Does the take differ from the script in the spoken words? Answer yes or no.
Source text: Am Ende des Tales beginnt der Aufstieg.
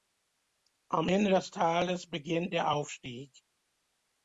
no